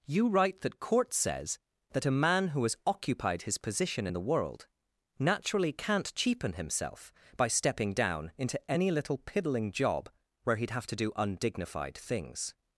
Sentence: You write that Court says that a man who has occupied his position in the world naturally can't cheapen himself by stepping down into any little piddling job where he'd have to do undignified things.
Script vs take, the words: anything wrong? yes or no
no